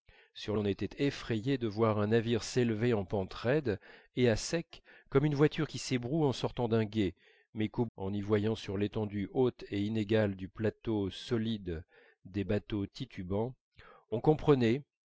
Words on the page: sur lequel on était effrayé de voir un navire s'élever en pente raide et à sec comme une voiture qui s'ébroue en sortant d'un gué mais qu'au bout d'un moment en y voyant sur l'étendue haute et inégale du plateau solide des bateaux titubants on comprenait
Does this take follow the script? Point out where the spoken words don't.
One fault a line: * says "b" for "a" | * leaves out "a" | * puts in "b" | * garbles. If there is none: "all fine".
* leaves out "lequel"
* leaves out "bout d'un moment"